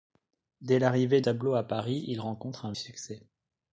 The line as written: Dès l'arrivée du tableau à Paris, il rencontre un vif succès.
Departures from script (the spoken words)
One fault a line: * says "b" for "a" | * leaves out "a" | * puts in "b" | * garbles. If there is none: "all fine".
* leaves out "du"
* leaves out "vif"